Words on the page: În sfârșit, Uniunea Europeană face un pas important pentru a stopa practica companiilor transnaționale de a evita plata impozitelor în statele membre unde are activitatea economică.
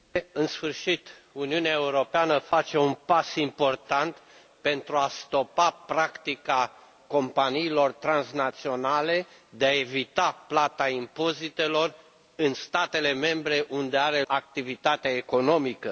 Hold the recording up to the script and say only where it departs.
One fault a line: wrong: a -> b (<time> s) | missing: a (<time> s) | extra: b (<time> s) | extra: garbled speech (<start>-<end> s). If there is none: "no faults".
no faults